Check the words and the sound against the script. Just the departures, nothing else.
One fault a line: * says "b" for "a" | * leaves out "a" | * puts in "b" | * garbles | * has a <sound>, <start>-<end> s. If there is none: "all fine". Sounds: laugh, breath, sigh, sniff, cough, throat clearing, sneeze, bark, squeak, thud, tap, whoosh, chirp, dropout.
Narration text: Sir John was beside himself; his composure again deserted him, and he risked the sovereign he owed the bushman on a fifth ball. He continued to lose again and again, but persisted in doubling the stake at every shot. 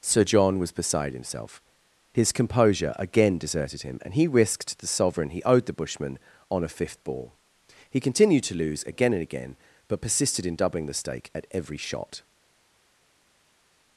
all fine